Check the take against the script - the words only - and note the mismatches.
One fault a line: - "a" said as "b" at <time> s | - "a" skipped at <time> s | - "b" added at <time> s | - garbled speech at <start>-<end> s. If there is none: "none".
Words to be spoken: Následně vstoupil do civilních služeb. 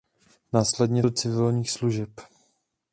- "vstoupil" skipped at 1.0 s